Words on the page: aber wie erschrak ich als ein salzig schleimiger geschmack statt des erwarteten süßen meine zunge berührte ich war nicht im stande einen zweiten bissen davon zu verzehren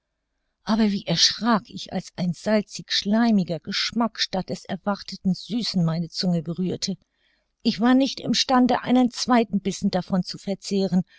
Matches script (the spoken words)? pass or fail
pass